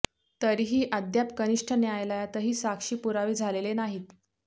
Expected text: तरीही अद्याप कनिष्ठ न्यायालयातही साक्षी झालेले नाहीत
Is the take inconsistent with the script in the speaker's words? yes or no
yes